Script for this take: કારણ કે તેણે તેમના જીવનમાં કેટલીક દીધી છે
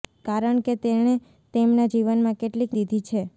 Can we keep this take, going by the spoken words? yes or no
yes